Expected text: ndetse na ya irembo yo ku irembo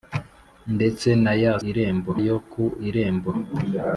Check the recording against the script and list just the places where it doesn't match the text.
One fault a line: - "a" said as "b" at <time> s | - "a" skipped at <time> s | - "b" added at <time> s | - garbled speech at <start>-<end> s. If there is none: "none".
none